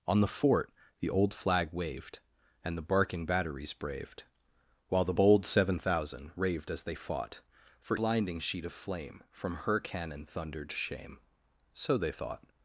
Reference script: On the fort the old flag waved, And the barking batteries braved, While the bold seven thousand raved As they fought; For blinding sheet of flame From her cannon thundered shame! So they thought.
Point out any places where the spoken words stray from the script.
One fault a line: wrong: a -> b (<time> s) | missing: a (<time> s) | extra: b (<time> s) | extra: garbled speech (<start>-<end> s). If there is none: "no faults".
no faults